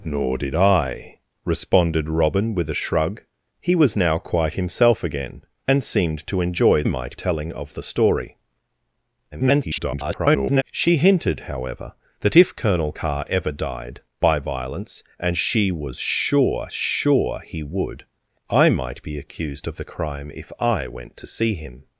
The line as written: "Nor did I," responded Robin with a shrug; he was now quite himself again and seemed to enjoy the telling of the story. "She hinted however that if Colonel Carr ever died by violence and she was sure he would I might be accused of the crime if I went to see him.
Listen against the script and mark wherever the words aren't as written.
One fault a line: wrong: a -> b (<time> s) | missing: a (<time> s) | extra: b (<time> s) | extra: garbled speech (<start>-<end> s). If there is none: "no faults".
wrong: the -> might (6.8 s)
extra: garbled speech (9.3-10.6 s)
extra: sure (16.7 s)